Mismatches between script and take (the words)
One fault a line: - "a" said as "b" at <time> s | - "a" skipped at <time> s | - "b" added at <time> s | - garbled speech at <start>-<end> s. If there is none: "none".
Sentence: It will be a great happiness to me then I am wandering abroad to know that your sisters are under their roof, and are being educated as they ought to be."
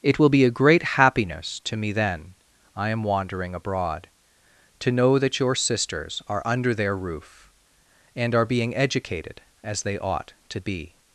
none